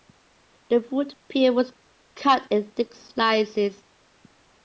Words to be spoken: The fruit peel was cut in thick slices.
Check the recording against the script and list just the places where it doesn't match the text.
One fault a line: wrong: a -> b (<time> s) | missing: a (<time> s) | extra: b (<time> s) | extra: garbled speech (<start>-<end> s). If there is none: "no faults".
no faults